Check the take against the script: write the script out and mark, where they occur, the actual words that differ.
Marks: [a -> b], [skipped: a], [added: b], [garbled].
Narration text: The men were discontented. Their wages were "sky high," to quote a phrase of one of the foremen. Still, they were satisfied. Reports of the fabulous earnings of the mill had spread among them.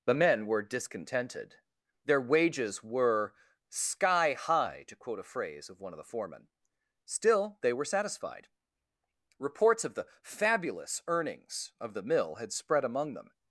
The men were discontented. Their wages were "sky high," to quote a phrase of one of the foremen. Still, they were satisfied. Reports of the fabulous earnings of the mill had spread among them.